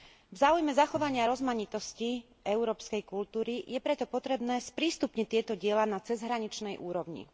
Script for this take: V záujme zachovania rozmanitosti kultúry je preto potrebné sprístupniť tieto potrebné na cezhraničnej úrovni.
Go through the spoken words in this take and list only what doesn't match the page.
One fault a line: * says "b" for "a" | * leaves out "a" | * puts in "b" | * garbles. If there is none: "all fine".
* puts in "európskej"
* says "diela" for "potrebné"